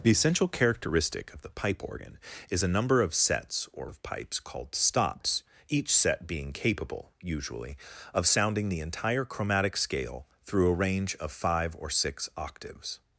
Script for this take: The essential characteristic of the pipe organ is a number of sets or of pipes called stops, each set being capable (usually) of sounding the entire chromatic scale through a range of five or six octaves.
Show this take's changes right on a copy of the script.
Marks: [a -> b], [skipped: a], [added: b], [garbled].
The essential characteristic of the pipe organ is a number of sets or of pipes called stops, each set being capable (usually) of sounding the entire chromatic scale through a range of five or six octaves.